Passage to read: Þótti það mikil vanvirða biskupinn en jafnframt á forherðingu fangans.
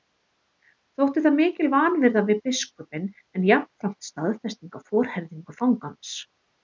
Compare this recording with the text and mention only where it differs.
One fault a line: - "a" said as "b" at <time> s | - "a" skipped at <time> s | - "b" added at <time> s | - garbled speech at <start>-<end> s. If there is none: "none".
- "við" added at 2.3 s
- "staðfesting" added at 4.1 s